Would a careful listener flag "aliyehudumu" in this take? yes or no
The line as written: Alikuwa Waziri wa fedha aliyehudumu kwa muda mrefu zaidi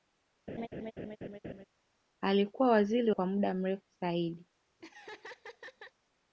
yes